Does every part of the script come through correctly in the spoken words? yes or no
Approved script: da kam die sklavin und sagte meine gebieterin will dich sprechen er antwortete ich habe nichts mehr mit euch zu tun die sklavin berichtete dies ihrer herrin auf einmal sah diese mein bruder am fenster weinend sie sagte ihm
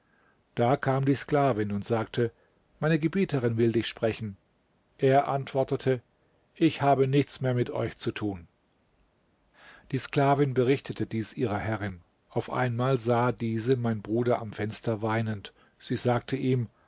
yes